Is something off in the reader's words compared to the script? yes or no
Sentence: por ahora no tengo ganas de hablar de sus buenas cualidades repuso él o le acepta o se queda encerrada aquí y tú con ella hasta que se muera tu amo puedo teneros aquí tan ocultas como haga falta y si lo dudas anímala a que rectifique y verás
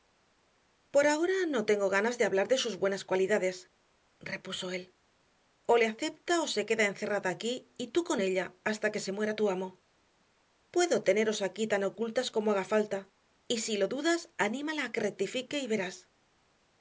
no